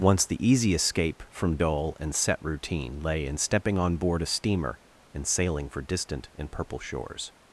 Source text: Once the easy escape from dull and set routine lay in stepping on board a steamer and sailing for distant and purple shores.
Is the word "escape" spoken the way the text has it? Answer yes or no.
yes